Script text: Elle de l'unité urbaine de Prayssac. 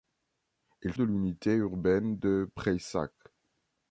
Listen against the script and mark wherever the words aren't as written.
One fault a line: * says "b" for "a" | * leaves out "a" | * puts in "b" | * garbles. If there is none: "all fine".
all fine